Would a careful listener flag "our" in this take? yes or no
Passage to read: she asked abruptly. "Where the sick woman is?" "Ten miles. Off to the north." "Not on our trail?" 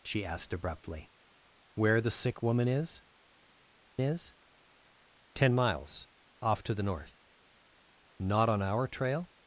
no